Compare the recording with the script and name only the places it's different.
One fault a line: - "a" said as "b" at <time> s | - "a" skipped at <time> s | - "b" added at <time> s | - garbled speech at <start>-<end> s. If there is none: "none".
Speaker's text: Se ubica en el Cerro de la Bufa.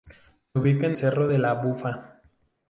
- "el" skipped at 1.0 s